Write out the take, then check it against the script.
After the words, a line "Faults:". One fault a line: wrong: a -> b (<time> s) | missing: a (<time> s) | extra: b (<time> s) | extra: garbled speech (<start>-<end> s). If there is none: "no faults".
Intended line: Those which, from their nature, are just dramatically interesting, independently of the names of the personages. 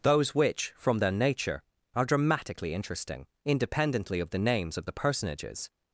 Those which, from their nature, are dramatically interesting, independently of the names of the personages.
Faults:
missing: just (2.0 s)